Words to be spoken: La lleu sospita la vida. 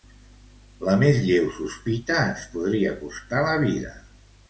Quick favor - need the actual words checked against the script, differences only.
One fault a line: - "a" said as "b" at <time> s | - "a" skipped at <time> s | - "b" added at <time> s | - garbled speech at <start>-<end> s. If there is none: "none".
- "més" added at 1.0 s
- "ens podria costar" added at 2.3 s